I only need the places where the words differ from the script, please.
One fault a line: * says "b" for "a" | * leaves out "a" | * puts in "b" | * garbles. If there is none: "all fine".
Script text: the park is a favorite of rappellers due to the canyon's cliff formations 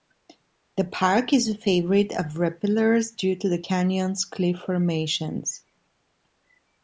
all fine